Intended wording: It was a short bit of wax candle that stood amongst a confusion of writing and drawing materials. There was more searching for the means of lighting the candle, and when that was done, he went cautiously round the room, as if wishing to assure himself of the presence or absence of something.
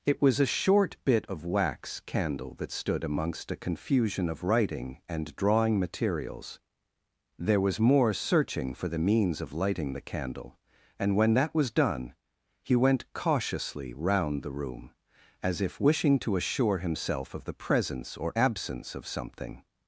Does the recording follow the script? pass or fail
pass